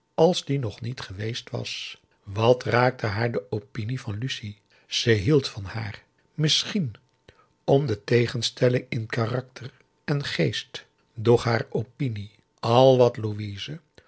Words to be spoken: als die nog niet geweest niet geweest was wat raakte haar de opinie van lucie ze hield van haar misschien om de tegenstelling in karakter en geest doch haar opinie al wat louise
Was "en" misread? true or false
false